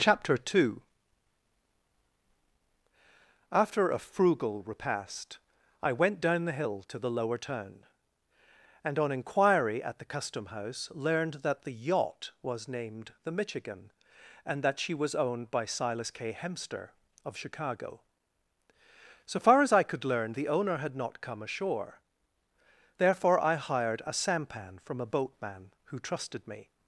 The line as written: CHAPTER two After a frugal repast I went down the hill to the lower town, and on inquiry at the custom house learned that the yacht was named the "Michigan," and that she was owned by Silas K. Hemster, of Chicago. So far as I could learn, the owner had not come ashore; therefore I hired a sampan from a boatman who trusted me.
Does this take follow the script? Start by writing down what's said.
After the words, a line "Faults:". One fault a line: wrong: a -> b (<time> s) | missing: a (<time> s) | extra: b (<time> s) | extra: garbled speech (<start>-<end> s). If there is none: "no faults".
CHAPTER two After a frugal repast I went down the hill to the lower town, and on inquiry at the custom house learned that the yacht was named the "Michigan," and that she was owned by Silas K. Hemster, of Chicago. So far as I could learn, the owner had not come ashore; therefore I hired a sampan from a boatman who trusted me.
Faults:
no faults